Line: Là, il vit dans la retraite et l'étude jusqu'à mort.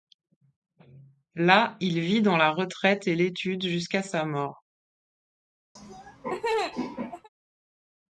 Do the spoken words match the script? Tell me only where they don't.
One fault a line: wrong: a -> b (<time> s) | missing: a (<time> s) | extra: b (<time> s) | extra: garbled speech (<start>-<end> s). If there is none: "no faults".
extra: sa (4.0 s)